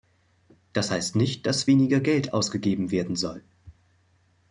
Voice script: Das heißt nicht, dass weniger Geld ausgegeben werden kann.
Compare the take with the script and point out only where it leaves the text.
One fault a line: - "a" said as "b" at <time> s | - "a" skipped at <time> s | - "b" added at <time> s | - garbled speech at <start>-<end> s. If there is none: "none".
- "kann" said as "soll" at 3.2 s